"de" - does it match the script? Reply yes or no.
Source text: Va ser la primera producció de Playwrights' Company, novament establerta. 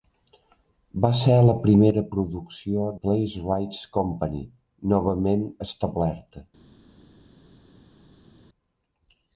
no